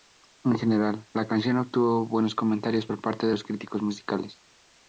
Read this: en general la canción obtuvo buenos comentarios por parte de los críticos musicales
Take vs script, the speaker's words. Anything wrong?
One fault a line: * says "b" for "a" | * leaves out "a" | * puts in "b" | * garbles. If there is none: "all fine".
all fine